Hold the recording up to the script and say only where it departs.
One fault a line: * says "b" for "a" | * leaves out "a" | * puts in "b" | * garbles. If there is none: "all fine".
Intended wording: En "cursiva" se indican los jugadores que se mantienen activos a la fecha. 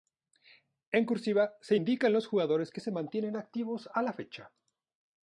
all fine